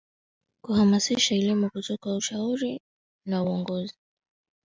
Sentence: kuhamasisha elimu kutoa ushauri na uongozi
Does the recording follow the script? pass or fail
pass